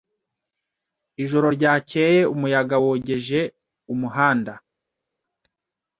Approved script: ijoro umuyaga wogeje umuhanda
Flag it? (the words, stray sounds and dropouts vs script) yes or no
yes